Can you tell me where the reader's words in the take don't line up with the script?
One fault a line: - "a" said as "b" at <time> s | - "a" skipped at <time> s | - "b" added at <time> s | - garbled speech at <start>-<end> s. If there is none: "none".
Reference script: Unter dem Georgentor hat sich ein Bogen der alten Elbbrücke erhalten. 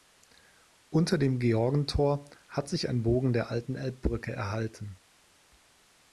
none